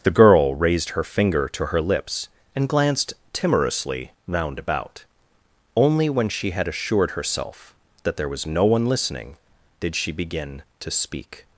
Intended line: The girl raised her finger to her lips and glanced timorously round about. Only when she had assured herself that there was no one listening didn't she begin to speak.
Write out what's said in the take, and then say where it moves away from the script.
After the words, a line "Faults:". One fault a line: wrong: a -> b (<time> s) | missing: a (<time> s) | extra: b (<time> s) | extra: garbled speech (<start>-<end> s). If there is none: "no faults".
The girl raised her finger to her lips and glanced timorously round about. Only when she had assured herself that there was no one listening did she begin to speak.
Faults:
wrong: didn't -> did (9.8 s)